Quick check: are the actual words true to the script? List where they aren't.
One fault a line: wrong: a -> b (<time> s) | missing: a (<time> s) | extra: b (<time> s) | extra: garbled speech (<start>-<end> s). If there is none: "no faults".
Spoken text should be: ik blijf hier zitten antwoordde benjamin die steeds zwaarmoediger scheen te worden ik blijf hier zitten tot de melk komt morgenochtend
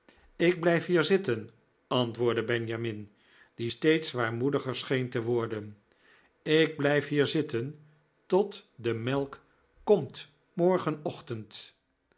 no faults